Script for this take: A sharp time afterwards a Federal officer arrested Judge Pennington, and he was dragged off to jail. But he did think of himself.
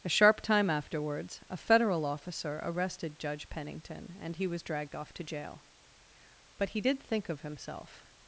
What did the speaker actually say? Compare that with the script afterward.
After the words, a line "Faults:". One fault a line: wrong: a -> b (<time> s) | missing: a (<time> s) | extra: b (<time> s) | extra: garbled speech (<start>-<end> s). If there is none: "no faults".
A sharp time afterwards a Federal officer arrested Judge Pennington, and he was dragged off to jail. But he did think of himself.
Faults:
no faults